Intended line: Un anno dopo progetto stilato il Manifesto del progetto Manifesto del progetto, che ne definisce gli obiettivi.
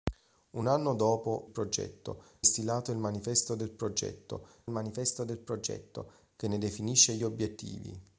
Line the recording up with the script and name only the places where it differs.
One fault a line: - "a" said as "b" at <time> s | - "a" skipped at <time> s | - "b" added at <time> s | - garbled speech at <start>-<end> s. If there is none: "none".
none